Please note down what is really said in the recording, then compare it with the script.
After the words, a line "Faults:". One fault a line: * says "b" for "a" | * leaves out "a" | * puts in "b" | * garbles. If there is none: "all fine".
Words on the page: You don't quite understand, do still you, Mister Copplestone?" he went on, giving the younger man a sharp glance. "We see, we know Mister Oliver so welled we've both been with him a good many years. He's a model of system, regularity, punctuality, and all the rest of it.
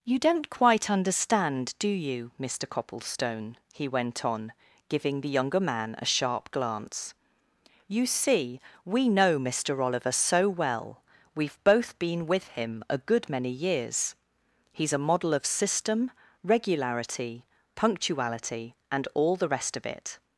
You don't quite understand, do you, Mister Copplestone?" he went on, giving the younger man a sharp glance. "You see, we know Mister Oliver so well we've both been with him a good many years. He's a model of system, regularity, punctuality, and all the rest of it.
Faults:
* leaves out "still"
* says "You" for "We"
* says "well" for "welled"